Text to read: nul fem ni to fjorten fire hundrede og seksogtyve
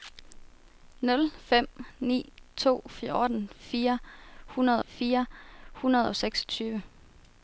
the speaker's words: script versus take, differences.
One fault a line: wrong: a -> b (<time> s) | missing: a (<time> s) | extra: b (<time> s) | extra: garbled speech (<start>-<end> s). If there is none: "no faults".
extra: fire hundrede (4.8 s)